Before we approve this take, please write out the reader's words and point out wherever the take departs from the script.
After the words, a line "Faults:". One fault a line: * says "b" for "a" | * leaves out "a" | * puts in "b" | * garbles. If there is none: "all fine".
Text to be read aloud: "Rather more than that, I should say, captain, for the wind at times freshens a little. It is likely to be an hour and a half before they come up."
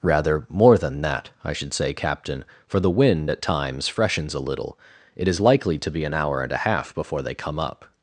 "Rather more than that, I should say, captain, for the wind at times freshens a little. It is likely to be an hour and a half before they come up."
Faults:
all fine